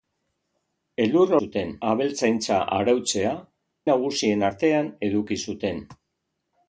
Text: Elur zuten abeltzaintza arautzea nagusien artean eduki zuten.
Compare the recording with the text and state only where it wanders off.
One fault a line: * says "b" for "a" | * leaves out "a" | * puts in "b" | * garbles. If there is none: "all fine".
all fine